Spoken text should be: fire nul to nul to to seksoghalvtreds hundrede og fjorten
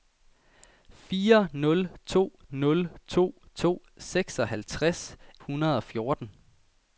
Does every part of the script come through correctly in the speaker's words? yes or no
yes